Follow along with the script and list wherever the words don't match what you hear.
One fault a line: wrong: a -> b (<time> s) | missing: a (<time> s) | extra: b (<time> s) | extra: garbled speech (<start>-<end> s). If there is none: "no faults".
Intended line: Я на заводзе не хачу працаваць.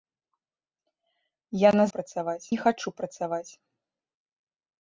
wrong: заводзе -> працаваць (2.0 s)